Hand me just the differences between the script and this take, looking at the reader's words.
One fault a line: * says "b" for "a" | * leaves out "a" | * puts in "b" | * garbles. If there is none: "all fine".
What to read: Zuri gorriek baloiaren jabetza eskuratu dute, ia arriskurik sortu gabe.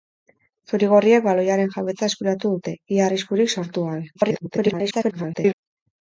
* garbles